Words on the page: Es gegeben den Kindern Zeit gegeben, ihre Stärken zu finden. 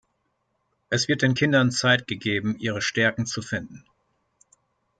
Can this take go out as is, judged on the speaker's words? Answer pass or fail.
fail